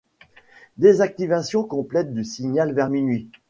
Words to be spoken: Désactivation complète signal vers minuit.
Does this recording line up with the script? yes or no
no